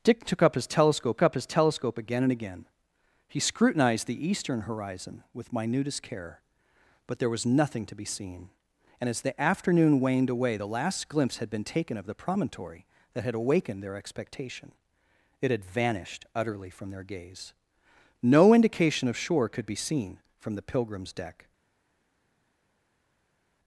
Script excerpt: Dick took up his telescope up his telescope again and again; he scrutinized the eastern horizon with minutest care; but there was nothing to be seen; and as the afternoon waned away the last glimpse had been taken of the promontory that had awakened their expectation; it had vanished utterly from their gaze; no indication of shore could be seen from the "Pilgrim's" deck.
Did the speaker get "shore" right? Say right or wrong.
right